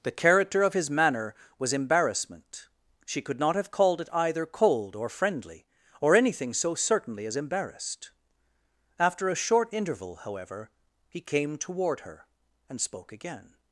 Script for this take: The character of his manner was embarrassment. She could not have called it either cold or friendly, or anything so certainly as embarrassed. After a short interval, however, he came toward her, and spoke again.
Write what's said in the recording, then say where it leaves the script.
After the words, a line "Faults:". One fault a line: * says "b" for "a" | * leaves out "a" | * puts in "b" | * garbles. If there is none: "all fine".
The character of his manner was embarrassment. She could not have called it either cold or friendly, or anything so certainly as embarrassed. After a short interval, however, he came toward her, and spoke again.
Faults:
all fine